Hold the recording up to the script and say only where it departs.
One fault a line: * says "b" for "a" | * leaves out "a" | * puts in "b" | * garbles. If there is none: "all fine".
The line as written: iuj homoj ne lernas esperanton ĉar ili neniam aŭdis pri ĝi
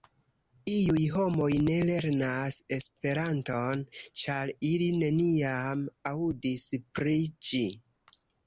all fine